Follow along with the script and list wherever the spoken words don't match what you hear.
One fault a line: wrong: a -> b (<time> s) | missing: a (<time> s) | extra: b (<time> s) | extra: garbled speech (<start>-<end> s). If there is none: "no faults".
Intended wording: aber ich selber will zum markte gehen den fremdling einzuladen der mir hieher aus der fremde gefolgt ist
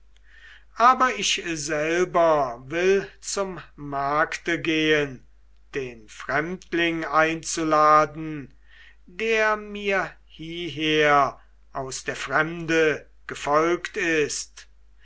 no faults